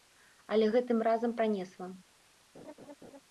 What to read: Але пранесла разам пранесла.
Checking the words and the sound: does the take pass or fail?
fail